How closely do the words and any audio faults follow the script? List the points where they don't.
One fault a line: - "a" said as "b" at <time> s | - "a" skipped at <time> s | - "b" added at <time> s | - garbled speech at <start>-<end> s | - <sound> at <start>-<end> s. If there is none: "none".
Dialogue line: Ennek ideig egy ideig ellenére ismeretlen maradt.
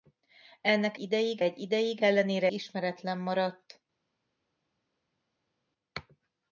none